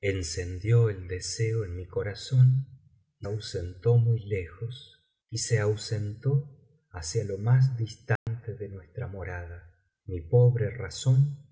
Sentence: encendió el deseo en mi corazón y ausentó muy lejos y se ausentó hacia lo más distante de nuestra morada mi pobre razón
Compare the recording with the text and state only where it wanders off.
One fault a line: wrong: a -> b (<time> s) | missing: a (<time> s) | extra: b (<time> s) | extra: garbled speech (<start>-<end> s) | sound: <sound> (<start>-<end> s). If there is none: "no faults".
sound: dropout (8.2-8.3 s)